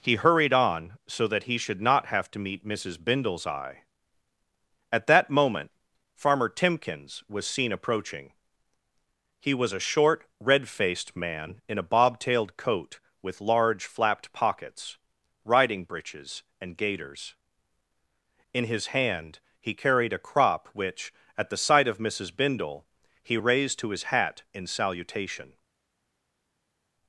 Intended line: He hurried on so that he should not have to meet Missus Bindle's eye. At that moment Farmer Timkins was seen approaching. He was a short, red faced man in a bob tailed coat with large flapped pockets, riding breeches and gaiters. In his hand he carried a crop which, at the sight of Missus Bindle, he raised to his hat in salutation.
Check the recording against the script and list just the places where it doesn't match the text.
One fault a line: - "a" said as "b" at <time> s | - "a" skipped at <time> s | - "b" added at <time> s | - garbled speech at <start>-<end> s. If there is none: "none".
none